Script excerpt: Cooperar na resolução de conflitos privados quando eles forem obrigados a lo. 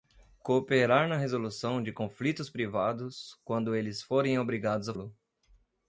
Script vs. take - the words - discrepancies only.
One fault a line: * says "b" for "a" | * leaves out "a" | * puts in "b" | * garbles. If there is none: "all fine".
all fine